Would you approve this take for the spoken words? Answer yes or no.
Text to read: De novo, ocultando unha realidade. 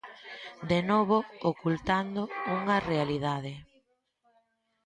yes